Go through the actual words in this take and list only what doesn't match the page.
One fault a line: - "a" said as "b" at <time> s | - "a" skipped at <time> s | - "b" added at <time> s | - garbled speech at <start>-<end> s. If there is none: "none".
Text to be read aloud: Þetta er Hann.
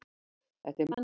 none